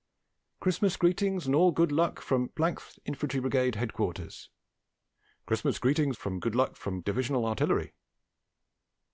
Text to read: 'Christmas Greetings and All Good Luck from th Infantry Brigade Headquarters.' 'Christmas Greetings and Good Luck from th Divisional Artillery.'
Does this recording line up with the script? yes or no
no